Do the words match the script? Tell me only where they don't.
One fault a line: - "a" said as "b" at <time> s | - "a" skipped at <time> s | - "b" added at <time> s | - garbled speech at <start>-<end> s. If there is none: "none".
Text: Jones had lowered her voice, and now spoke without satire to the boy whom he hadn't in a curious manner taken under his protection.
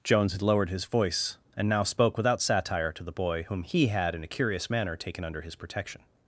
- "her" said as "his" at 0.7 s
- "hadn't" said as "had" at 3.9 s